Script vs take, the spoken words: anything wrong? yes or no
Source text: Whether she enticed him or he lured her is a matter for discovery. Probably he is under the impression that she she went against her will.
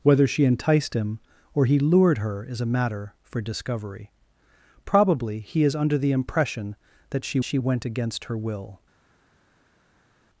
no